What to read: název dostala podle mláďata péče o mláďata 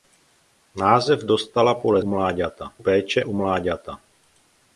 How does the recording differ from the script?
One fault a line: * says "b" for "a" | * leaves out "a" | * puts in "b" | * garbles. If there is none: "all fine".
all fine